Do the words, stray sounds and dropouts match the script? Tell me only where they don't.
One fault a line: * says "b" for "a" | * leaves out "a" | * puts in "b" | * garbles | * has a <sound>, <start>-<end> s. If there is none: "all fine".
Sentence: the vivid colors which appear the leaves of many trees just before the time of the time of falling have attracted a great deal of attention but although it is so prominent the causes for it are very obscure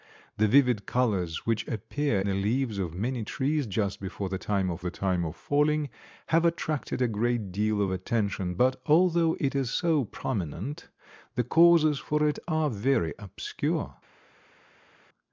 all fine